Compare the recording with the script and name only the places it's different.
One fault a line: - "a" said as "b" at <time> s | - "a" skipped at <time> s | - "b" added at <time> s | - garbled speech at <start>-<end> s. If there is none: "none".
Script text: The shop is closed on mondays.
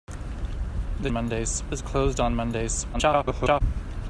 - "shop" said as "mondays" at 1.1 s
- garbled speech at 2.9-3.6 s